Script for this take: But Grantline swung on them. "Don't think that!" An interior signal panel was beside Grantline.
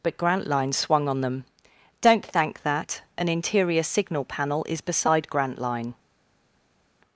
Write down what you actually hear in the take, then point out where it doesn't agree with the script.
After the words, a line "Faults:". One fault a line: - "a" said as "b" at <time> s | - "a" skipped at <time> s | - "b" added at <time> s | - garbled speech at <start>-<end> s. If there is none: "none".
But Grantline swung on them. "Don't thank that!" An interior signal panel is beside Grantline.
Faults:
- "think" said as "thank" at 2.2 s
- "was" said as "is" at 4.7 s